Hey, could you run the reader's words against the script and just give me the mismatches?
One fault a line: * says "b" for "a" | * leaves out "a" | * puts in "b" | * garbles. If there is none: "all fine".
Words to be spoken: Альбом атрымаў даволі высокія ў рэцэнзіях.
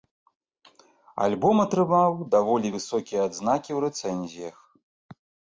* puts in "адзнакі"